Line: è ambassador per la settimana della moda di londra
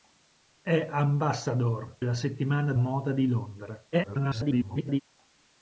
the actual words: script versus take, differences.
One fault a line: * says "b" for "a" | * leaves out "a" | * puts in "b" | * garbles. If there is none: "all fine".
* leaves out "per"
* leaves out "della"
* garbles